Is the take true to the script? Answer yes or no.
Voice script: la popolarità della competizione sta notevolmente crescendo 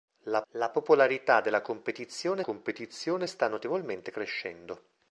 no